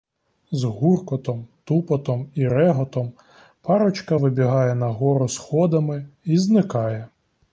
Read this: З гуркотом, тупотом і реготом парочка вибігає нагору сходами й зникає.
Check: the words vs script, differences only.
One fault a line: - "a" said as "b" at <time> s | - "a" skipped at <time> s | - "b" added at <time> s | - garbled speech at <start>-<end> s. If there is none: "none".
none